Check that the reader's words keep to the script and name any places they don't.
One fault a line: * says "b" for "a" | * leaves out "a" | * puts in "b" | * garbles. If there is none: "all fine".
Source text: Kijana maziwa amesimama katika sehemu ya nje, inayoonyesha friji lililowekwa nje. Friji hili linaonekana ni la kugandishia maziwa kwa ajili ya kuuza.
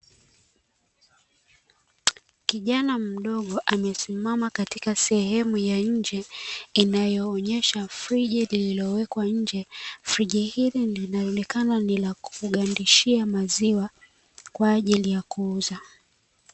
* says "mdogo" for "maziwa"